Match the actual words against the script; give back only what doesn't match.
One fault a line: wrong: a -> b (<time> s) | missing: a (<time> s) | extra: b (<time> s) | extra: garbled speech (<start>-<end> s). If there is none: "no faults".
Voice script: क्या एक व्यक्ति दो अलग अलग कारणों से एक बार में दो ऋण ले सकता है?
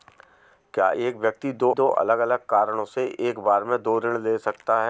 extra: दो (1.7 s)